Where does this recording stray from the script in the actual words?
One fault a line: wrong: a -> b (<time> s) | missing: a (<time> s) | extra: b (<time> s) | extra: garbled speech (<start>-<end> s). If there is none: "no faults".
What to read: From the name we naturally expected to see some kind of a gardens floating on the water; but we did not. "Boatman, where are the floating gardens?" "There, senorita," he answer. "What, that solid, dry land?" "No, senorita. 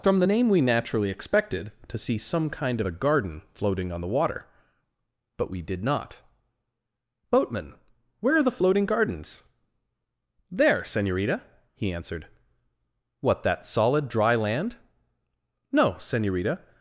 wrong: gardens -> garden (2.9 s)
wrong: answer -> answered (11.9 s)